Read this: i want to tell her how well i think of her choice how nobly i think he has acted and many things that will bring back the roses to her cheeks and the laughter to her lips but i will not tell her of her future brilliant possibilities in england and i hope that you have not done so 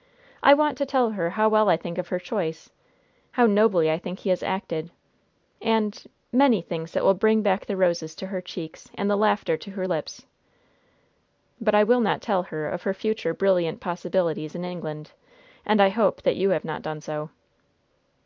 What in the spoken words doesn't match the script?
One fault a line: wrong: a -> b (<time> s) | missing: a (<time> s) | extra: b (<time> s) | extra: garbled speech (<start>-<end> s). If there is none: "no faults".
no faults